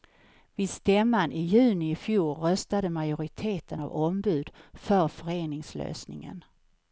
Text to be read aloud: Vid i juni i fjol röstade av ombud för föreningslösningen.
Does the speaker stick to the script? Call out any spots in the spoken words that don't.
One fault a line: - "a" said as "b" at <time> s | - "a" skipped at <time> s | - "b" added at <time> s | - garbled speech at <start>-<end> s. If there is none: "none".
- "stämman" added at 0.7 s
- "majoriteten" added at 2.9 s